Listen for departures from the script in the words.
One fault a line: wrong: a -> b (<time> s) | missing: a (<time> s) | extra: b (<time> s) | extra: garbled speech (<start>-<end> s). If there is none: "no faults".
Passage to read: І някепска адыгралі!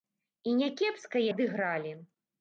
no faults